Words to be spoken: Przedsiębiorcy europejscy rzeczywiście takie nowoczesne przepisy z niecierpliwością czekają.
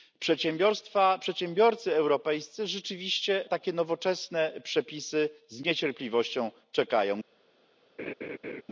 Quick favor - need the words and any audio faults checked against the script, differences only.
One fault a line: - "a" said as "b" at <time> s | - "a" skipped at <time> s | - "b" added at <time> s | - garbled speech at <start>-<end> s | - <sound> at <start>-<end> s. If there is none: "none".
- laugh at 8.0-8.6 s